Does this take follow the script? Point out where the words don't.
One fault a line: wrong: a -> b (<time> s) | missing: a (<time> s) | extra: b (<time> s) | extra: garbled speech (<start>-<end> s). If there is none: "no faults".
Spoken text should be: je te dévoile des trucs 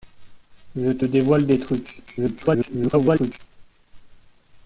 extra: garbled speech (2.1-3.4 s)